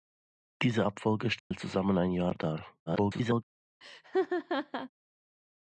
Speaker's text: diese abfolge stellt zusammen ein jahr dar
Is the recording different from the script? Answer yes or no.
yes